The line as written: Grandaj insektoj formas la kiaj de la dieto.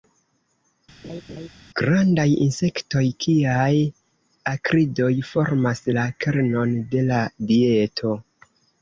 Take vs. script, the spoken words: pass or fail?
fail